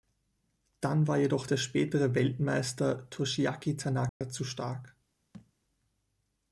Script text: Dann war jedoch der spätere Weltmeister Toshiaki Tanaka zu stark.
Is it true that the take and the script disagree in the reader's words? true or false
false